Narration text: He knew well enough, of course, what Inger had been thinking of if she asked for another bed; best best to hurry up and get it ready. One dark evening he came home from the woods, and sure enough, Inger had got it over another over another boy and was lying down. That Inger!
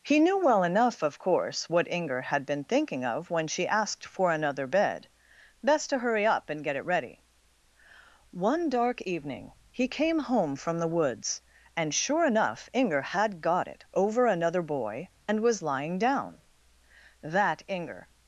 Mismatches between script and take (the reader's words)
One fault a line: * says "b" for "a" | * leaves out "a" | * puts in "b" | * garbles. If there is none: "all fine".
* says "when" for "if"
* leaves out "best"
* leaves out "over another"